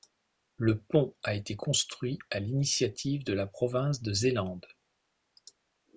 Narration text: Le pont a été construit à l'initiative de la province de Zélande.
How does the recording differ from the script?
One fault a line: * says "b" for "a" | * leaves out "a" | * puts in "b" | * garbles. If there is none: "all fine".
all fine